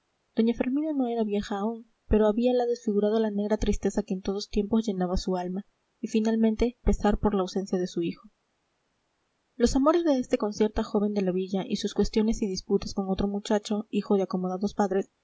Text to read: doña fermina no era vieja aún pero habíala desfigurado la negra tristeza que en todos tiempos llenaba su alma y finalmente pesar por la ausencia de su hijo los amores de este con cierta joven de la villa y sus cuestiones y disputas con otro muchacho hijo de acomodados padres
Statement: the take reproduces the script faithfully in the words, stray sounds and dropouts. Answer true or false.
true